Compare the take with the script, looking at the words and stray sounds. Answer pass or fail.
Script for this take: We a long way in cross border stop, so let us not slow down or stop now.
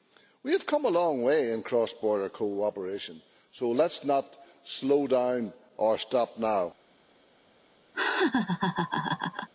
fail